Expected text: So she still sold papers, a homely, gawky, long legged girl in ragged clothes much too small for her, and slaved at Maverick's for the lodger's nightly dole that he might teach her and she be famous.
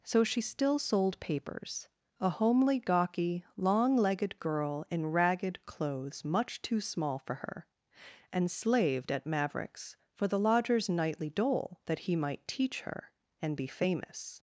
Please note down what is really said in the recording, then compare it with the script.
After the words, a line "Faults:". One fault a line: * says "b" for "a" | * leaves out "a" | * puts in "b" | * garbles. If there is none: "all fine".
So she still sold papers, a homely, gawky, long legged girl in ragged clothes much too small for her, and slaved at Maverick's for the lodger's nightly dole that he might teach her and be famous.
Faults:
* leaves out "she"